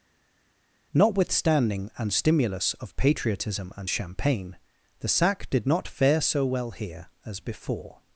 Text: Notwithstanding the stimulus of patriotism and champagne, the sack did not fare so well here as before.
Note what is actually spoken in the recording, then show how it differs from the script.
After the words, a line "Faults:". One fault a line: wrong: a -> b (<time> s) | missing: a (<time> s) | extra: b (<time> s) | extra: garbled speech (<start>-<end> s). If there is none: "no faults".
Notwithstanding an stimulus of patriotism and champagne, the sack did not fare so well here as before.
Faults:
wrong: the -> an (2.0 s)